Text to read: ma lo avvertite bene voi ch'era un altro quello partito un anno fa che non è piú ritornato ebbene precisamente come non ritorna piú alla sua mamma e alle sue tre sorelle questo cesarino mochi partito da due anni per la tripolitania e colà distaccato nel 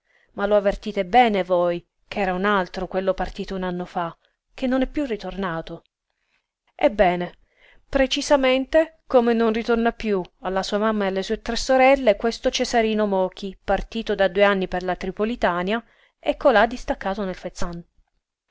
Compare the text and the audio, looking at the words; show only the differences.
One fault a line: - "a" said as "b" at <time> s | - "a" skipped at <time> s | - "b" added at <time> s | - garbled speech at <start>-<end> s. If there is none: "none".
none